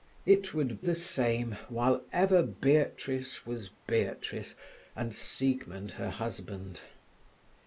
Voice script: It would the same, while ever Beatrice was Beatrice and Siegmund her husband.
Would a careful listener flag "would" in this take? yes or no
no